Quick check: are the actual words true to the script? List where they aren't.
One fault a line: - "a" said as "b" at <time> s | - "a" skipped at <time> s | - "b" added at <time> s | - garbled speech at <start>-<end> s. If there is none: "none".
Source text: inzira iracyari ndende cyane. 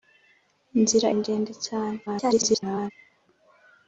- "iracyari" skipped at 1.1 s
- garbled speech at 2.1-2.9 s